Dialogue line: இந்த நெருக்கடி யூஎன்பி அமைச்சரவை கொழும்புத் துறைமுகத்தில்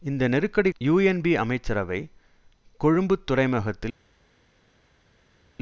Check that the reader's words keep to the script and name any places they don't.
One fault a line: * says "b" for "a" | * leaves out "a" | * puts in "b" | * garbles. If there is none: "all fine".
all fine